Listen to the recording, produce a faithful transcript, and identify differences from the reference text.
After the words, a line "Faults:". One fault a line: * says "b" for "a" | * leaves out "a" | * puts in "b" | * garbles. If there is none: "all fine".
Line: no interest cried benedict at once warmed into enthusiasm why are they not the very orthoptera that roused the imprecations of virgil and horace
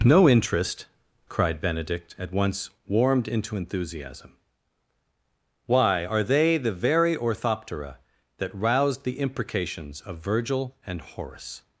no interest cried benedict at once warmed into enthusiasm why are they the very orthoptera that roused the imprecations of virgil and horace
Faults:
* leaves out "not"